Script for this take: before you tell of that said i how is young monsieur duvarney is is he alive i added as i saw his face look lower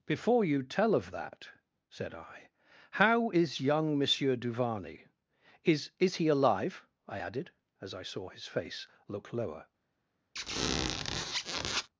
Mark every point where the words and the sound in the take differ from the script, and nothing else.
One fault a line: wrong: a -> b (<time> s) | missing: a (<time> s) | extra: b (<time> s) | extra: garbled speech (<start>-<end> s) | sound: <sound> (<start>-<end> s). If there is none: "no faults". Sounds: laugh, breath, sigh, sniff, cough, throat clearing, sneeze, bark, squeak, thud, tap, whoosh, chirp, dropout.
sound: squeak (10.4-11.9 s)